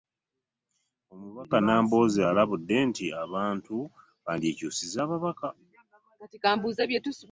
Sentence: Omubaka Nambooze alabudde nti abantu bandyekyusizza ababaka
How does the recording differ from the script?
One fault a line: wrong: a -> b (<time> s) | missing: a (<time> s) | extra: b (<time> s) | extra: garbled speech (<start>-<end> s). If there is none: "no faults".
no faults